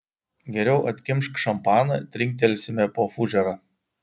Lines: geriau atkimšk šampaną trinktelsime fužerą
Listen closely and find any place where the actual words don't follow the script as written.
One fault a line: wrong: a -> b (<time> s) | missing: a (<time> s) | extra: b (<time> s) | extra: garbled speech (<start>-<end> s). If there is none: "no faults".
extra: po (3.0 s)